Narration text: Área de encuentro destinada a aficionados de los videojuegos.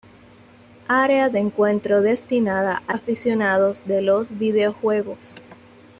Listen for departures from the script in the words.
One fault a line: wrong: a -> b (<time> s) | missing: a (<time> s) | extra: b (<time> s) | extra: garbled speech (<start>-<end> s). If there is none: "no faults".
no faults